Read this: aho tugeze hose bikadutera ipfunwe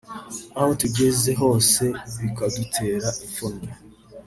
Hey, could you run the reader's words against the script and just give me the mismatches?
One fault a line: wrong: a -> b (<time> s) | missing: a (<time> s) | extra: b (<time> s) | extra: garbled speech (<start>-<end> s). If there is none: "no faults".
no faults